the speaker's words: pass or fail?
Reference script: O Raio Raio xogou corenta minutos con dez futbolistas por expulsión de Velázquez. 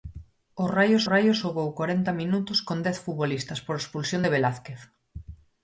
pass